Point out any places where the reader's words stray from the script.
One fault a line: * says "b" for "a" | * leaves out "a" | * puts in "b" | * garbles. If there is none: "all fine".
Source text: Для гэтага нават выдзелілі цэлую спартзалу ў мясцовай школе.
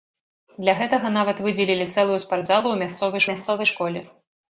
* puts in "мясцовай"